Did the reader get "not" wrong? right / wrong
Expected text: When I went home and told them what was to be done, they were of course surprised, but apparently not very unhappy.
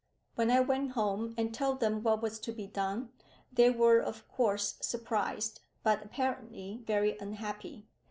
wrong